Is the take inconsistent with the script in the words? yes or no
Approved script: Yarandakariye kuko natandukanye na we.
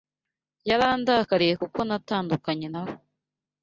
no